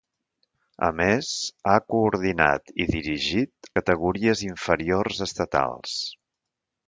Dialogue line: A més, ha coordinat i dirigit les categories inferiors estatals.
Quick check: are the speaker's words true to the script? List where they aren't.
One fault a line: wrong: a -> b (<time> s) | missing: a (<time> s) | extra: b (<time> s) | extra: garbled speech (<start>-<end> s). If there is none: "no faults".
missing: les (3.7 s)